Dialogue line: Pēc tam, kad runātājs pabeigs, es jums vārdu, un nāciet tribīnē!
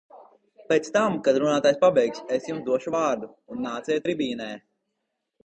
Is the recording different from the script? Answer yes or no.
yes